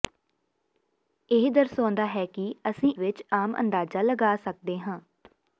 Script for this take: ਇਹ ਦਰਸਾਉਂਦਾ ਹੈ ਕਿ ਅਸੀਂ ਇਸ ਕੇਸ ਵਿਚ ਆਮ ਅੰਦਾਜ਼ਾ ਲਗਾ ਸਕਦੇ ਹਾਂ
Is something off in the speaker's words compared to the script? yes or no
yes